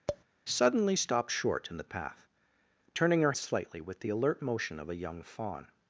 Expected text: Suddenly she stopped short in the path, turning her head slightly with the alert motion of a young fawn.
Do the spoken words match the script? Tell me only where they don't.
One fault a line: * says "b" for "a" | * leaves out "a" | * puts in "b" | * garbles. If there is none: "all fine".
* leaves out "she"
* leaves out "head"